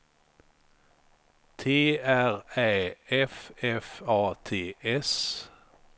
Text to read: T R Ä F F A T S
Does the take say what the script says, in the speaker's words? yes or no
yes